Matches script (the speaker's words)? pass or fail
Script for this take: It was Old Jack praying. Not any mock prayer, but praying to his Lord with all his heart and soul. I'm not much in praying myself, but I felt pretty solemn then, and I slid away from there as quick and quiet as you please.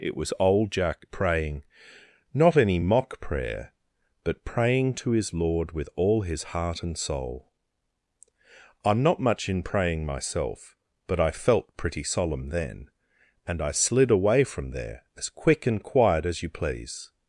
pass